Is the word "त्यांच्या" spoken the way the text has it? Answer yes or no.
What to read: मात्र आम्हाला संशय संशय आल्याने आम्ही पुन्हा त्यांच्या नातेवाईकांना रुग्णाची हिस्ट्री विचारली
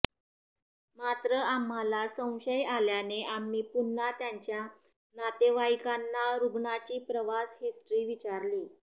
yes